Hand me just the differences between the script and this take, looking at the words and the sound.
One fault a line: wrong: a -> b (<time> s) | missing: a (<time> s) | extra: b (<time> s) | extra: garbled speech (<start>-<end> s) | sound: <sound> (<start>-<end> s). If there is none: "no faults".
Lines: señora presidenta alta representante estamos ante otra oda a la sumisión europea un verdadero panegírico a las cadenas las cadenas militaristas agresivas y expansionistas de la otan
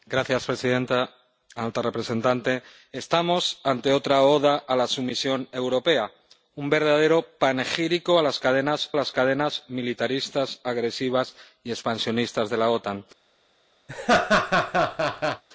sound: laugh (13.9-15.4 s)